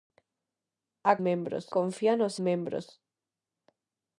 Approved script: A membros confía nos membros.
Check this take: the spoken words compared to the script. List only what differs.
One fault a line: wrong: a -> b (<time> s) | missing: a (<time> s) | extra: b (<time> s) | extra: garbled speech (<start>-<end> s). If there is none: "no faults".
no faults